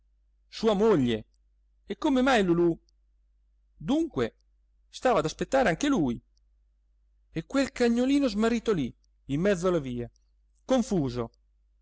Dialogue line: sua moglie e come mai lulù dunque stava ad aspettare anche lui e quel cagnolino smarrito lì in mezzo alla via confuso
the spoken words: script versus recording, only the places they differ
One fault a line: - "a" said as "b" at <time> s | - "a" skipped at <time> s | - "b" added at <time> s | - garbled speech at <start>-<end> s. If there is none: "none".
none